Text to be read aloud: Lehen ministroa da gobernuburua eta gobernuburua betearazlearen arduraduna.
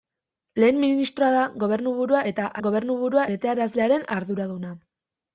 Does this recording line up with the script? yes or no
yes